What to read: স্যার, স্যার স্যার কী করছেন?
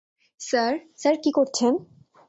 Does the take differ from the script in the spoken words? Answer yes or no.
yes